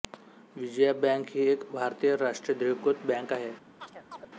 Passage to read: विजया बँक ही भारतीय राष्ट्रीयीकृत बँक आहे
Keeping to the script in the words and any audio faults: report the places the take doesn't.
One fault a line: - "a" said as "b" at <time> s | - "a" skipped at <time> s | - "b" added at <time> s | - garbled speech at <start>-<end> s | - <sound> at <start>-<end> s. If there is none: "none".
- "एक" added at 1.5 s
- chirp at 3.8-4.3 s